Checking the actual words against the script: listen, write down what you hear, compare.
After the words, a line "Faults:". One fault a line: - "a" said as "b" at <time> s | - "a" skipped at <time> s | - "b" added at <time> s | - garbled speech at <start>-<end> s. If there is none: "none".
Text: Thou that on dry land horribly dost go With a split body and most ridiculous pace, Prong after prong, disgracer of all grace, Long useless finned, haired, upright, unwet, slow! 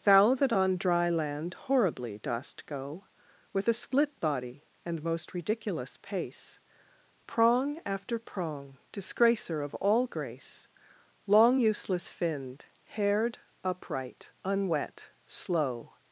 Thou that on dry land horribly dost go With a split body and most ridiculous pace, Prong after prong, disgracer of all grace, Long useless finned, haired, upright, unwet, slow!
Faults:
none